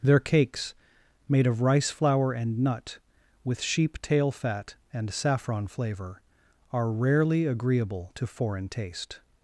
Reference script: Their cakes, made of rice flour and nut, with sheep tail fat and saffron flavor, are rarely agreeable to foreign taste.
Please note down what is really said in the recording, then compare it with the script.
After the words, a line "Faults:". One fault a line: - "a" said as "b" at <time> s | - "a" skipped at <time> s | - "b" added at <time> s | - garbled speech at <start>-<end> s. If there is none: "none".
Their cakes, made of rice flour and nut, with sheep tail fat and saffron flavor, are rarely agreeable to foreign taste.
Faults:
none